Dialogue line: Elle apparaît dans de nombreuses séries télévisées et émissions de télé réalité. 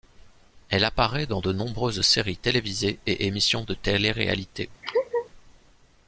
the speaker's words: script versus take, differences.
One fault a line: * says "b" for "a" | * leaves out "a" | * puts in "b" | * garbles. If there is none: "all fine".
all fine